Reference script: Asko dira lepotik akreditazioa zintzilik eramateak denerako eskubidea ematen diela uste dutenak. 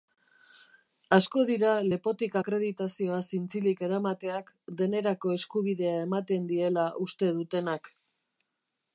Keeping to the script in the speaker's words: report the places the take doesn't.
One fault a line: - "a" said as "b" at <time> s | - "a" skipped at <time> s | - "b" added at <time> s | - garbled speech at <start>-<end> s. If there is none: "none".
none